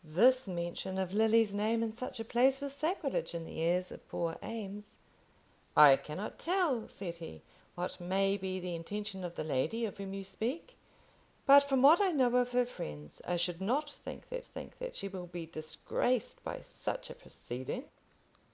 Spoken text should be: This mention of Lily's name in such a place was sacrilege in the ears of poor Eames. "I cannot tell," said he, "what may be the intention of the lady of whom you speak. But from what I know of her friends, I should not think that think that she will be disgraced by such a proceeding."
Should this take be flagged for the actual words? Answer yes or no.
no